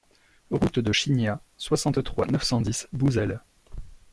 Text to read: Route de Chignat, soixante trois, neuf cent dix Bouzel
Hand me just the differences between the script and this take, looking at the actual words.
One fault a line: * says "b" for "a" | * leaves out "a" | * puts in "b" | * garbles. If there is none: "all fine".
all fine